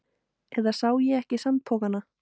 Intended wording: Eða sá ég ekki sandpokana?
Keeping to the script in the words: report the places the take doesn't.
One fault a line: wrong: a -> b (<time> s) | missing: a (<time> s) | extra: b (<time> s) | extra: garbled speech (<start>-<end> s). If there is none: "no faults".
no faults